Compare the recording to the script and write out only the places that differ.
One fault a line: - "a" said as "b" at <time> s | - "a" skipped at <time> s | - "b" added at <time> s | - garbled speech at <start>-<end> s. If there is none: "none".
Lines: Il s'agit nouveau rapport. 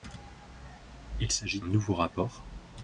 none